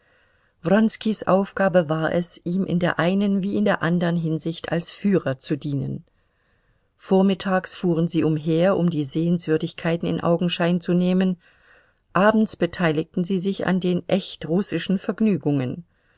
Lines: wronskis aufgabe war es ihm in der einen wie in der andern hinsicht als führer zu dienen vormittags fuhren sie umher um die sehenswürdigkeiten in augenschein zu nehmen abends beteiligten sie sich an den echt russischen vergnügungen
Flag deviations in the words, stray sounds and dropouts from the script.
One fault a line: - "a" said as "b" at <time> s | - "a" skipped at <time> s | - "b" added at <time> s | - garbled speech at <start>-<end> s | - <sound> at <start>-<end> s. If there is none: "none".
none